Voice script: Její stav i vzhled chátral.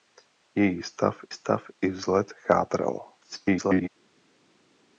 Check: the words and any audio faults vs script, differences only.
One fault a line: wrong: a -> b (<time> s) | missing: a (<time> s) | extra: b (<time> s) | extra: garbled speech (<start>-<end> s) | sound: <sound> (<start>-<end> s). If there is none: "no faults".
extra: stav (1.3 s)
extra: garbled speech (3.2-3.9 s)